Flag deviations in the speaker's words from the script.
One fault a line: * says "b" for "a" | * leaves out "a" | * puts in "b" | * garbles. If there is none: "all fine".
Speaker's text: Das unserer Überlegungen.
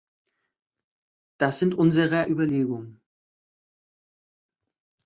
* puts in "sind"